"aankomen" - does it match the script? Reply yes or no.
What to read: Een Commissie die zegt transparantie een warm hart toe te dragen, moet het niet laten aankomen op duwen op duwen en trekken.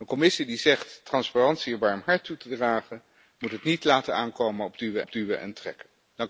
yes